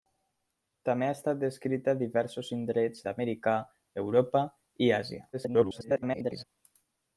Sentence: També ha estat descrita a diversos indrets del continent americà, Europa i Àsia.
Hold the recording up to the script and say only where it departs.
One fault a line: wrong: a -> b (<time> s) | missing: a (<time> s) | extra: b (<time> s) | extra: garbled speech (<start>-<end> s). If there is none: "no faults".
missing: del continent (3.0 s)
extra: garbled speech (5.3-6.4 s)